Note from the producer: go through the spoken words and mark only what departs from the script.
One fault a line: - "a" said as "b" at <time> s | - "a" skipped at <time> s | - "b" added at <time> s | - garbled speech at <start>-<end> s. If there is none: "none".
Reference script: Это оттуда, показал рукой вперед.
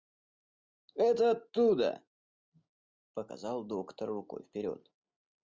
- "доктор" added at 3.6 s